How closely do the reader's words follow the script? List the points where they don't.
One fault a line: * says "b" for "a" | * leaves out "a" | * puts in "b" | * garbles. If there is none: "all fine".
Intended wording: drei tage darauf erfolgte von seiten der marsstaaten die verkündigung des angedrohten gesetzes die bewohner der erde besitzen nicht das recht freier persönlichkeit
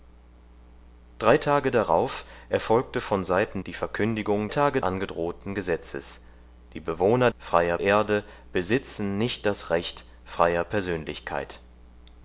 * leaves out "der marsstaaten"
* says "tage" for "des"
* says "freier" for "der"